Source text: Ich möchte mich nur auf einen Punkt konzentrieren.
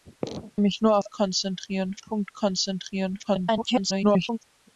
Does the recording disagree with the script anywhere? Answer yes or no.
yes